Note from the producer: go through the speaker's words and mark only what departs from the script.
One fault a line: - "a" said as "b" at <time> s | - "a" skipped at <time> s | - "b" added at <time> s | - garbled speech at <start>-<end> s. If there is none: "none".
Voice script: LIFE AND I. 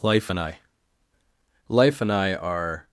- "Life and I are" added at 1.7 s